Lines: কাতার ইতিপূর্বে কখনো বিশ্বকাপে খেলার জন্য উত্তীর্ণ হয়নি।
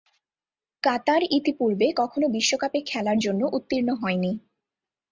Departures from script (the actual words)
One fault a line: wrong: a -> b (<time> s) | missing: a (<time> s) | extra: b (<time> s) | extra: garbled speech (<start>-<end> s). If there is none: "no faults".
no faults